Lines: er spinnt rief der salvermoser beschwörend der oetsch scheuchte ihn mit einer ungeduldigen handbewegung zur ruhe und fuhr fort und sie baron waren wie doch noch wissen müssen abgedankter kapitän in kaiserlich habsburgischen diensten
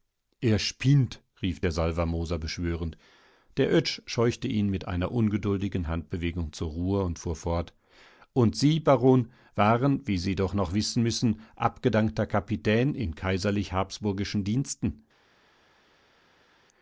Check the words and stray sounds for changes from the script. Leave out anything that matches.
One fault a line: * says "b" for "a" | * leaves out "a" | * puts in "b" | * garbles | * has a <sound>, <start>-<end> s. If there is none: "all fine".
* puts in "sie"